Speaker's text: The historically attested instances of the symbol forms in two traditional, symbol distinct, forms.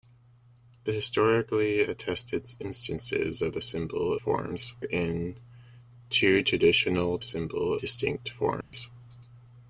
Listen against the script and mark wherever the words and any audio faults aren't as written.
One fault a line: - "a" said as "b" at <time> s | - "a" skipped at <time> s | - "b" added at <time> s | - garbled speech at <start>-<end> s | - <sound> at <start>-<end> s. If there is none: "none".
- dropout at 8.6-8.7 s